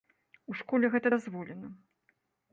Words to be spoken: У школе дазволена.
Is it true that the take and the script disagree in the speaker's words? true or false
true